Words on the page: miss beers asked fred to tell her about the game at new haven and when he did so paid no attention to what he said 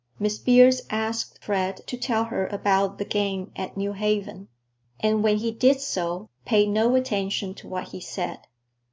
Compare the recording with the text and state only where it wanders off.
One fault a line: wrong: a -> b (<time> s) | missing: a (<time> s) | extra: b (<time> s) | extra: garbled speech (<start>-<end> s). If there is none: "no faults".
no faults